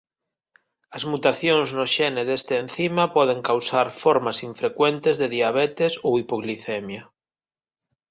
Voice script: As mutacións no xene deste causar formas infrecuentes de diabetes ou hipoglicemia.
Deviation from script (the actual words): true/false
true